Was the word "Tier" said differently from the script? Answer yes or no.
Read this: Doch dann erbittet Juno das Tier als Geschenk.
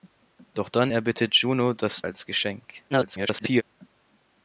yes